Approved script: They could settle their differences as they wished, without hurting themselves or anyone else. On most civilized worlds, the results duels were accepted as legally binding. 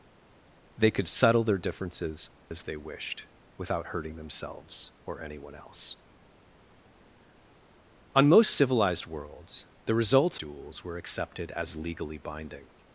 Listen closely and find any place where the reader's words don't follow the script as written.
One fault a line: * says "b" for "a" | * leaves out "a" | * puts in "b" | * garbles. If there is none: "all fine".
all fine